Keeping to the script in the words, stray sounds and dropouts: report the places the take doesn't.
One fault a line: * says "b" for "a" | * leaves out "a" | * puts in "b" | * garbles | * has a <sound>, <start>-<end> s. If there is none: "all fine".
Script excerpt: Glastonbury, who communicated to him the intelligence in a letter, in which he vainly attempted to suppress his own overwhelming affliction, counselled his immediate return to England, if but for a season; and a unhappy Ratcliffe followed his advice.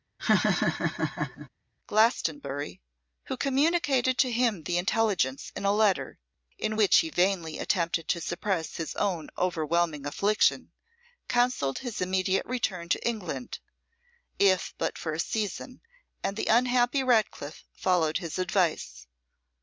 * has a laugh, 0.2-1.5 s
* says "the" for "a"